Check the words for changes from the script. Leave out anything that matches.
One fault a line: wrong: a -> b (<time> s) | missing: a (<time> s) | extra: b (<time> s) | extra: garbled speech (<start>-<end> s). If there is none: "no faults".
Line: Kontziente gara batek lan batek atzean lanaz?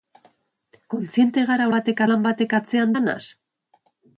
no faults